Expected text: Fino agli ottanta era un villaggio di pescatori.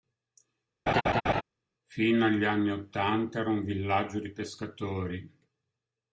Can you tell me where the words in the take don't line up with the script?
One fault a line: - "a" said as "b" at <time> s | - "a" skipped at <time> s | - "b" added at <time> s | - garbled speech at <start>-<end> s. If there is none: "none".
- "anni" added at 2.4 s